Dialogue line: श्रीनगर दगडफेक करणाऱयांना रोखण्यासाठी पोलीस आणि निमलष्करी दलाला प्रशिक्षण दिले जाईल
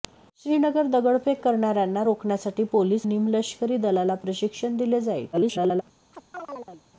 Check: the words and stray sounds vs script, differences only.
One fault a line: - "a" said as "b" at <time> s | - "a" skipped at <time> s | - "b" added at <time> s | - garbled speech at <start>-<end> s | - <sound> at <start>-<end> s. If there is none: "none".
- "आणि" skipped at 3.1 s
- garbled speech at 5.3-5.8 s
- chirp at 6.1-6.8 s